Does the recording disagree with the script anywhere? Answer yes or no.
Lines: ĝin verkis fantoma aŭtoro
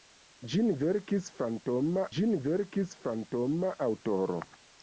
yes